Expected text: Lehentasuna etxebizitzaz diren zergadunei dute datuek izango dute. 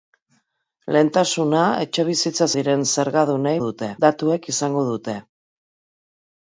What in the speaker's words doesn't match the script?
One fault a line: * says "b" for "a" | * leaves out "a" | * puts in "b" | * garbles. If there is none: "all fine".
all fine